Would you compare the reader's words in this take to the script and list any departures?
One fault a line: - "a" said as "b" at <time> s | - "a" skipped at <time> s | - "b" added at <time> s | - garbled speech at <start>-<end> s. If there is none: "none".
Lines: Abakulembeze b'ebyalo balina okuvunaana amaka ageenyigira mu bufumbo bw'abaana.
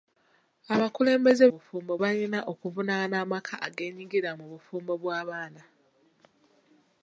- "b'ebyalo" said as "bufumbo" at 1.5 s